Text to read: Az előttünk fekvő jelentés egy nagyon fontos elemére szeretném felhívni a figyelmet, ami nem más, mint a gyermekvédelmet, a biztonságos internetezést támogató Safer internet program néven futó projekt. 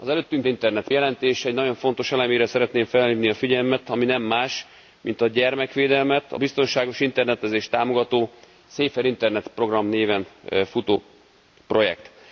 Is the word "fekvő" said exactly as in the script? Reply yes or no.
no